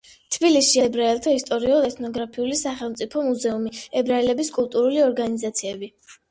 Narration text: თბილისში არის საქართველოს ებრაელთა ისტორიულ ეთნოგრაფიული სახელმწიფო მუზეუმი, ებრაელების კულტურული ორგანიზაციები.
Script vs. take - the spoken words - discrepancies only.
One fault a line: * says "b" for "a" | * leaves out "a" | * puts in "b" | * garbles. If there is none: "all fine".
* leaves out "არის საქართველოს"